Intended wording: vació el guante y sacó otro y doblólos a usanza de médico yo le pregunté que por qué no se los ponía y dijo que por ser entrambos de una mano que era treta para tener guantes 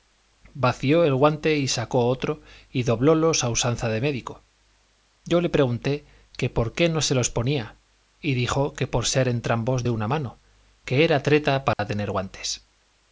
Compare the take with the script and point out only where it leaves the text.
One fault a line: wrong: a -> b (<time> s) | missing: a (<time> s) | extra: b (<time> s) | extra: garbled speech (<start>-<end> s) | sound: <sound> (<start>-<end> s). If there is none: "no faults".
sound: dropout (11.7-11.8 s)